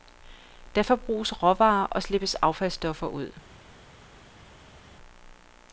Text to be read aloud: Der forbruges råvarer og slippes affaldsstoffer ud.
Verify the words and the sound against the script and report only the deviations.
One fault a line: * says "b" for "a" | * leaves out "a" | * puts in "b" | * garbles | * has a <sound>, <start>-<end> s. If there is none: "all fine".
all fine